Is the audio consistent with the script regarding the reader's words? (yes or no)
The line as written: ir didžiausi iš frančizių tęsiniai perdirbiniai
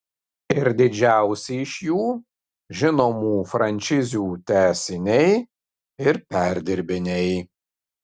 no